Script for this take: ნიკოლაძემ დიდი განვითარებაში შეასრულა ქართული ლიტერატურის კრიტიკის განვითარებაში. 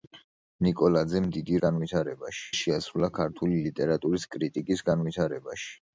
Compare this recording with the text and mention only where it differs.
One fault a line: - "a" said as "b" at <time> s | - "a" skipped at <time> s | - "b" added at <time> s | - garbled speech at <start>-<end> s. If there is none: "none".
none